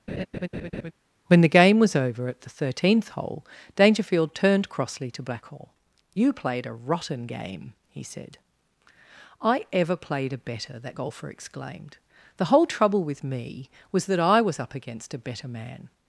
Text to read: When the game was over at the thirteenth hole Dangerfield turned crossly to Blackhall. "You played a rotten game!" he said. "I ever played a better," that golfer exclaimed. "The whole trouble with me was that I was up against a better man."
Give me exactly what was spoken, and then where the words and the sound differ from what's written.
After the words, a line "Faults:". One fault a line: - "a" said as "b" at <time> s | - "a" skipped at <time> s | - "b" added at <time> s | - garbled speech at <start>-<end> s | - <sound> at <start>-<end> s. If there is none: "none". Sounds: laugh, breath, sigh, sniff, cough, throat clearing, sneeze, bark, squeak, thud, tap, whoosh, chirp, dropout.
When the game was over at the thirteenth hole Dangerfield turned crossly to Blackhall. "You played a rotten game!" he said. "I ever played a better," that golfer exclaimed. "The whole trouble with me was that I was up against a better man."
Faults:
- laugh at 0.1-0.9 s